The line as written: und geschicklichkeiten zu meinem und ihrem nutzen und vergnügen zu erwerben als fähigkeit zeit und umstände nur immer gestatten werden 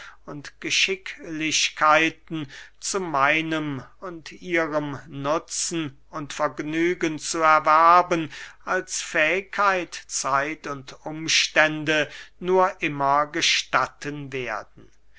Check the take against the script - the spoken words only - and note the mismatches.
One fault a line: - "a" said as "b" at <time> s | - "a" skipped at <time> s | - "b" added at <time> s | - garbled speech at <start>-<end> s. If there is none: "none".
none